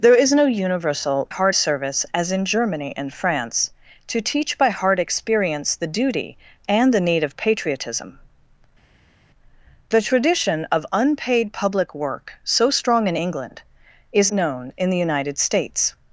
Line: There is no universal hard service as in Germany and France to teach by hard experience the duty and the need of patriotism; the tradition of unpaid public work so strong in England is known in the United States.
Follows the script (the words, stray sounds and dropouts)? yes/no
yes